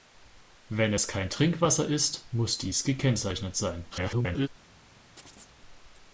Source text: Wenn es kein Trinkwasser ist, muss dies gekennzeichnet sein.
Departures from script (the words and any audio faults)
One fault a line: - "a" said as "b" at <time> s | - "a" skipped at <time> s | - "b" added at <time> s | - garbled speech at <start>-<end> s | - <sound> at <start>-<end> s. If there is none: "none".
- garbled speech at 3.9-4.5 s
- chirp at 5.2-5.5 s